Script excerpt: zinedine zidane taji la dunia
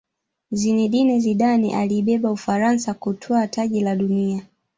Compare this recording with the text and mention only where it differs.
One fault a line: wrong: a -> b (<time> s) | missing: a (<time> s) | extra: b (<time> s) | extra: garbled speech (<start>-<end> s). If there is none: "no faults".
extra: aliibeba ufaransa kutwaa (1.8 s)